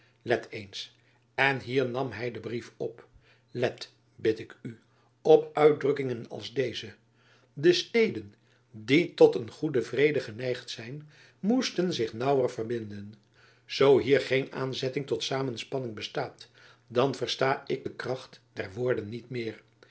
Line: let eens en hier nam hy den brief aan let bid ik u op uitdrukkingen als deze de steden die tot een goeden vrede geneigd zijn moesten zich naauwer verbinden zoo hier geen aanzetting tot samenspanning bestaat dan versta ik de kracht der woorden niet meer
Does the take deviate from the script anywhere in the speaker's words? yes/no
yes